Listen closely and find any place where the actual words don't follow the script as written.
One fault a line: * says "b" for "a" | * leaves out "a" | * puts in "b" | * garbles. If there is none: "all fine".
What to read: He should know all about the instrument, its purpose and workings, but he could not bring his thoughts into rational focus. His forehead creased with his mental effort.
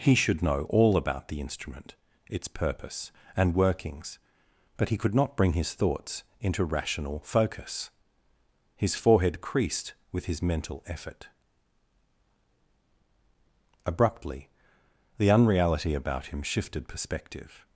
* puts in "Abruptly the unreality about him shifted perspective"